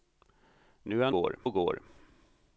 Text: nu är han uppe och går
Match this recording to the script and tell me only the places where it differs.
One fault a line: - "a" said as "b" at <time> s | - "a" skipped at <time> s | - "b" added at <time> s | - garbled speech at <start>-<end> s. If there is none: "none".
- "uppe" said as "går" at 1.1 s